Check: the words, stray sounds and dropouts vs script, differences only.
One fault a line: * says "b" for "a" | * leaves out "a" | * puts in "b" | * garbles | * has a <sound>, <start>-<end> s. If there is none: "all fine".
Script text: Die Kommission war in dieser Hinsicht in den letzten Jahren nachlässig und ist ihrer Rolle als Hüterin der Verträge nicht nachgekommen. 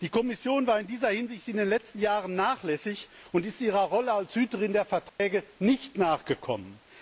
* has a dropout, 5.1-5.2 s